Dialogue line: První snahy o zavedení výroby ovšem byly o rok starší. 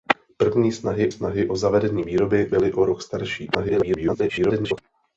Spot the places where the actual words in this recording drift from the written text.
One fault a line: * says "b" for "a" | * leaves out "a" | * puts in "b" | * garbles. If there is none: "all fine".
* puts in "snahy"
* leaves out "ovšem"
* garbles